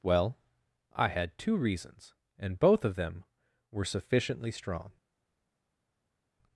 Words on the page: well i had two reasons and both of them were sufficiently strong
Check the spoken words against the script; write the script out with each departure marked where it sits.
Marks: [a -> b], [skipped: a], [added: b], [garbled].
well i had two reasons and both of them were sufficiently strong